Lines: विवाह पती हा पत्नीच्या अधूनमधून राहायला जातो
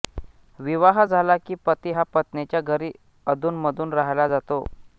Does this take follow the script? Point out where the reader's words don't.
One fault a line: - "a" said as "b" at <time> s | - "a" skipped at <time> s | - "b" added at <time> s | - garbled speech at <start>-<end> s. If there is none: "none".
- "झाला की" added at 1.0 s
- "घरी" added at 2.6 s